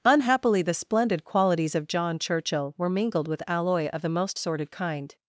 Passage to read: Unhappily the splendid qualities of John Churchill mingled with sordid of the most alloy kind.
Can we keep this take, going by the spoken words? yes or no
no